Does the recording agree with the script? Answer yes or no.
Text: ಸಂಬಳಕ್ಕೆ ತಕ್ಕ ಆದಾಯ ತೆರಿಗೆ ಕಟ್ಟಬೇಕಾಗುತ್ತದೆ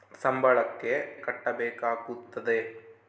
no